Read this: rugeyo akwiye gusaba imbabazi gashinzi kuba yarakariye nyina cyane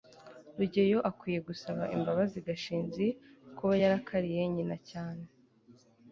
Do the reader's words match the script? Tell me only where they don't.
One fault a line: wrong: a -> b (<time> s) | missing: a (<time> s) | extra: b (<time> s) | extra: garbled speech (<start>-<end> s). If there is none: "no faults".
no faults